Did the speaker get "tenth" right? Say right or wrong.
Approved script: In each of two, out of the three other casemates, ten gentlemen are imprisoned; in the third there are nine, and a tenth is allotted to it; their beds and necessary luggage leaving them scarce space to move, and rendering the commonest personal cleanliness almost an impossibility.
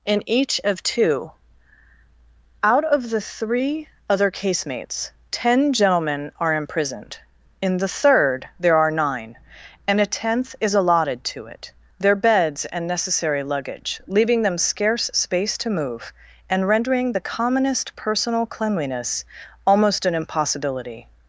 right